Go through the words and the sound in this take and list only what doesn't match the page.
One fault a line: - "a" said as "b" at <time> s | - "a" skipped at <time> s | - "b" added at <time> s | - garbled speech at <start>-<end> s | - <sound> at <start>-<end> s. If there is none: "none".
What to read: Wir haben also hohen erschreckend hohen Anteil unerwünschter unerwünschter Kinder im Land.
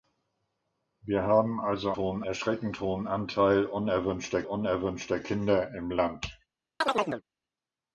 - chirp at 6.8-7.2 s